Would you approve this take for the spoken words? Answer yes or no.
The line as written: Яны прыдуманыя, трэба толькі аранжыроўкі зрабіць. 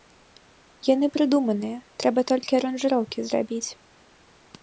yes